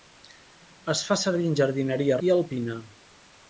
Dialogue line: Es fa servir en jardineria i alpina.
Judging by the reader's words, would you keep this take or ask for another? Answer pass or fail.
pass